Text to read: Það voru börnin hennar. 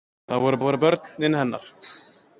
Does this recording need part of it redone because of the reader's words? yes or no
yes